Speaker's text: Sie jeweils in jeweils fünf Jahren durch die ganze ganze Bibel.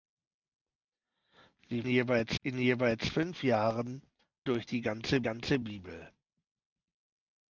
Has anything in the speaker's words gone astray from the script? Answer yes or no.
no